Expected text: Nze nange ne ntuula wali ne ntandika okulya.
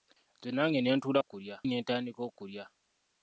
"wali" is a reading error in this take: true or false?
true